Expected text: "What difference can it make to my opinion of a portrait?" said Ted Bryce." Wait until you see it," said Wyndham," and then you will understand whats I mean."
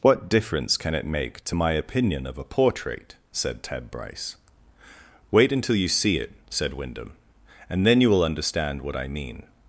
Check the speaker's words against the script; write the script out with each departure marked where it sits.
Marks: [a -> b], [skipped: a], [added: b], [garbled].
"What difference can it make to my opinion of a portrait?" said Ted Bryce." Wait until you see it," said Wyndham," and then you will understand [whats -> what] I mean."